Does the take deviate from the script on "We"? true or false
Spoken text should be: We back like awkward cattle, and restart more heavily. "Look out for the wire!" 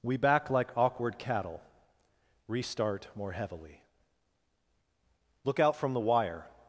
false